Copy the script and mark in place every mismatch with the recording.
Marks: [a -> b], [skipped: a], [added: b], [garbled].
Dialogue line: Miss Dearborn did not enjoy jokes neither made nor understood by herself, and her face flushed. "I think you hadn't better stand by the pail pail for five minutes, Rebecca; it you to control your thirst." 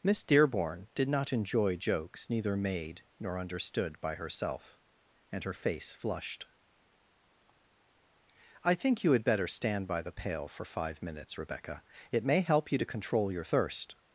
Miss Dearborn did not enjoy jokes neither made nor understood by herself, and her face flushed. "I think you [hadn't -> had] better stand by the pail [skipped: pail] for five minutes, Rebecca; it [added: may help] you to control your thirst."